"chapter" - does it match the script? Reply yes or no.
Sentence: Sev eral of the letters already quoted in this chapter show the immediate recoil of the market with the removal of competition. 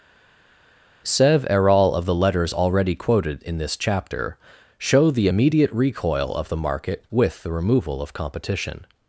yes